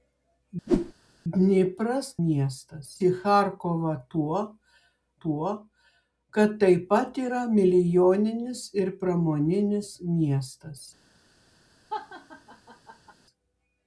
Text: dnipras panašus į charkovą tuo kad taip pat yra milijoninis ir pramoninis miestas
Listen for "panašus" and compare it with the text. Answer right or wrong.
wrong